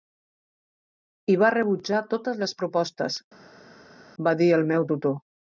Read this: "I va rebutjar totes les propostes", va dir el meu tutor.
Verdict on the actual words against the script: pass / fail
pass